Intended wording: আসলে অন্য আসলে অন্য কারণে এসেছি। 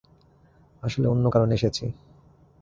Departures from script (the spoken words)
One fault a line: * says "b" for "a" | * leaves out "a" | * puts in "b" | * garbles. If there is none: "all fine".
* leaves out "আসলে অন্য"